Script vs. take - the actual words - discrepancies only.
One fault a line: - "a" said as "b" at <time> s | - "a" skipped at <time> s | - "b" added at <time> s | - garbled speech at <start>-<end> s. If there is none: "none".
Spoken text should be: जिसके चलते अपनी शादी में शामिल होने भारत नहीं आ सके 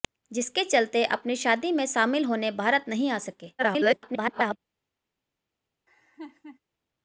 - garbled speech at 3.6-4.6 s